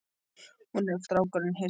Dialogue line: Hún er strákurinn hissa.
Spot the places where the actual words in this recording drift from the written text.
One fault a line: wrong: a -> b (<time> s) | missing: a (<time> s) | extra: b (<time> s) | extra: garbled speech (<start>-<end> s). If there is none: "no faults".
no faults